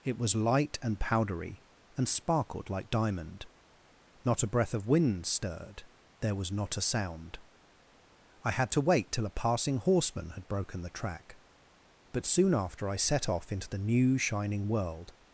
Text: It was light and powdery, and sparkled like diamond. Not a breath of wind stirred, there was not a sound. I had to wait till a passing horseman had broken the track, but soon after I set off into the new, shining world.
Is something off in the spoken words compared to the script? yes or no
no